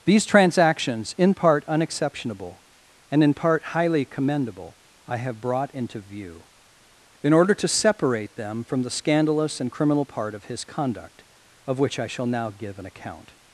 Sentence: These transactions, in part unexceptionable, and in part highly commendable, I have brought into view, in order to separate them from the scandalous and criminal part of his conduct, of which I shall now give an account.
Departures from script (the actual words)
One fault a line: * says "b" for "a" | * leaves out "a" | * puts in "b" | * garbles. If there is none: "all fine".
all fine